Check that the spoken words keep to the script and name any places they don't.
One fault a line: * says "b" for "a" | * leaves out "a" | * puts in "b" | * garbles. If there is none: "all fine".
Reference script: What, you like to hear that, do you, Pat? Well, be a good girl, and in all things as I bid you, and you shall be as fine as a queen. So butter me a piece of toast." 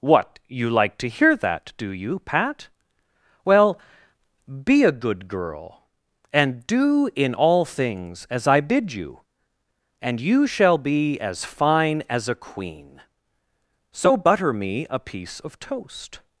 * puts in "do"